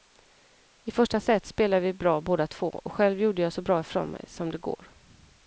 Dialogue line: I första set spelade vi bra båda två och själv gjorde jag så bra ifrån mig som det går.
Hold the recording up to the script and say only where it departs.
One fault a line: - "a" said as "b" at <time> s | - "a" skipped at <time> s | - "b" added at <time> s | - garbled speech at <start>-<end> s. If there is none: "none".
none